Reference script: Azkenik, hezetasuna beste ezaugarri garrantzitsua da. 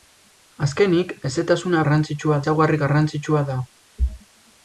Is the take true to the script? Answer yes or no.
no